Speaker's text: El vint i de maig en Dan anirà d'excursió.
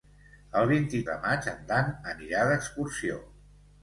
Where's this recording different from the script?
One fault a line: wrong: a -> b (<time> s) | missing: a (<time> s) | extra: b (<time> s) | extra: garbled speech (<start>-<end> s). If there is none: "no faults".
no faults